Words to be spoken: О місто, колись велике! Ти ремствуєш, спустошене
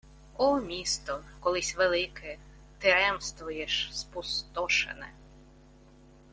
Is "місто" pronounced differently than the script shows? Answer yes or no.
no